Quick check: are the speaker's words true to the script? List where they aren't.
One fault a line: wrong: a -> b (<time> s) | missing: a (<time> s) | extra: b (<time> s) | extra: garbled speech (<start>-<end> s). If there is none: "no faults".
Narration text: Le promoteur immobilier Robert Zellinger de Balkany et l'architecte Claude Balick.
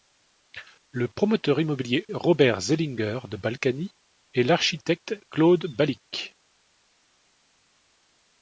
no faults